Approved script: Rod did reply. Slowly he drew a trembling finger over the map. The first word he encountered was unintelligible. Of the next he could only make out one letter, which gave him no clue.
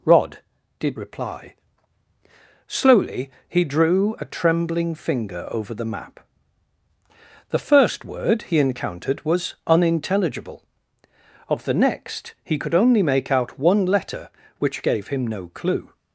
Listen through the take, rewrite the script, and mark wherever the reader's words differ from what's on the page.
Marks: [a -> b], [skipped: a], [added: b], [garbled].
Rod did reply. Slowly he drew a trembling finger over the map. The first word he encountered was unintelligible. Of the next he could only make out one letter, which gave him no clue.